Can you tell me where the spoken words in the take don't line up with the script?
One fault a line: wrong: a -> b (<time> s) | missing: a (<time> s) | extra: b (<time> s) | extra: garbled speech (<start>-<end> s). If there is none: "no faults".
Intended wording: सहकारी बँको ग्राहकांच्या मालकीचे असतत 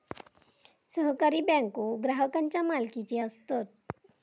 no faults